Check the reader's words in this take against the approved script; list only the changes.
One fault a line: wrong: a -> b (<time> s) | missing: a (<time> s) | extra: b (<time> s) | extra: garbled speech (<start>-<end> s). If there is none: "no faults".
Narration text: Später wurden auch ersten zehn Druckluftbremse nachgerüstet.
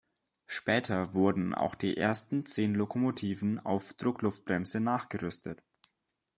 extra: die (1.8 s)
extra: Lokomotiven auf (2.7 s)